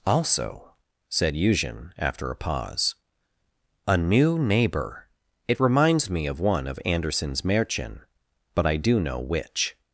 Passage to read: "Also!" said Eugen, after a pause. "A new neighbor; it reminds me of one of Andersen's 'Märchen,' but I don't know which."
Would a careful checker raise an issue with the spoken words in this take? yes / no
yes